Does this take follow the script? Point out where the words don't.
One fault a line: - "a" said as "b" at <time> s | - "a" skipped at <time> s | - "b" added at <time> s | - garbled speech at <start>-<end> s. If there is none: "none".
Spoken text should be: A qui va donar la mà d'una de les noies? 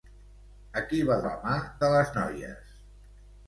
- "donar" skipped at 1.2 s
- "d'una" skipped at 1.5 s